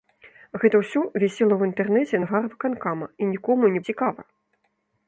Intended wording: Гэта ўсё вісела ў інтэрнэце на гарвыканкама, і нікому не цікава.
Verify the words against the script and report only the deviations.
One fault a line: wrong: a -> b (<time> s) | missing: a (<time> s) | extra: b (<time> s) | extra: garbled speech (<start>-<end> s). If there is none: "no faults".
no faults